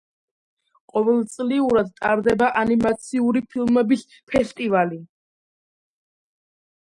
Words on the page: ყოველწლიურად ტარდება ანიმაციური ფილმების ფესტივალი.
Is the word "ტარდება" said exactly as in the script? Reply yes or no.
yes